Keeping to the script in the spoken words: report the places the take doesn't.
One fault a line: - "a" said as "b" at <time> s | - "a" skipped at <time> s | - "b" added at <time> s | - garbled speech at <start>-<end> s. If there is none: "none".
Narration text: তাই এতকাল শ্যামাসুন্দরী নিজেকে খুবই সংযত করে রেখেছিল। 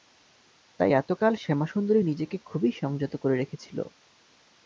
none